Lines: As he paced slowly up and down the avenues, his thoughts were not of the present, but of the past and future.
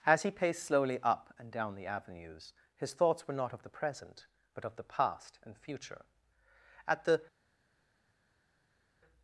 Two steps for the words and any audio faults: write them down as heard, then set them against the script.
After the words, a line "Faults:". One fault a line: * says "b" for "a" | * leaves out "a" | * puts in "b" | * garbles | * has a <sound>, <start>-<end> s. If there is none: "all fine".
As he paced slowly up and down the avenues, his thoughts were not of the present, but of the past and future. At the
Faults:
* puts in "At the"